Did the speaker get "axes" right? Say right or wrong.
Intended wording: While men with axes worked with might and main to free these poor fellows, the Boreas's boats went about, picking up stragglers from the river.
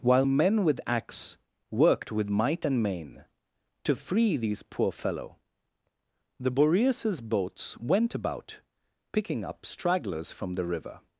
wrong